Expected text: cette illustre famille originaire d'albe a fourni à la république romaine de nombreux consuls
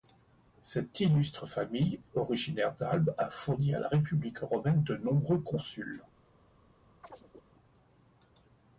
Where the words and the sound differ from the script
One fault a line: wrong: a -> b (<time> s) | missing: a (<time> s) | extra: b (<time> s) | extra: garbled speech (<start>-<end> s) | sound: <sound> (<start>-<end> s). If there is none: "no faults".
sound: chirp (7.0-7.4 s)